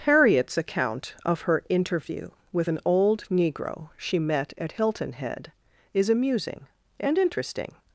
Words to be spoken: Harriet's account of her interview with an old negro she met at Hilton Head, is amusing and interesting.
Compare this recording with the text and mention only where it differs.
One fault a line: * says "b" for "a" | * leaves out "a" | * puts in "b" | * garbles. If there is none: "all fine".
all fine